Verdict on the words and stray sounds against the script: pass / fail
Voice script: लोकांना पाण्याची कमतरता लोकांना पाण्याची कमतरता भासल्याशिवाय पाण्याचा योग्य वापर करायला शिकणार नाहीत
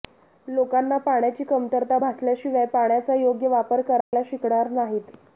fail